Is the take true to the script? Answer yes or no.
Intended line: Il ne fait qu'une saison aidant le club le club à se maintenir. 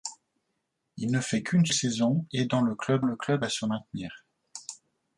yes